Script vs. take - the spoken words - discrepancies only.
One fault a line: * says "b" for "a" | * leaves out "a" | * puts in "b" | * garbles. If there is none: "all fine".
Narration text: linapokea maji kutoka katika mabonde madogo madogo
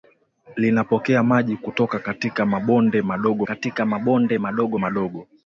* puts in "katika mabonde madogo"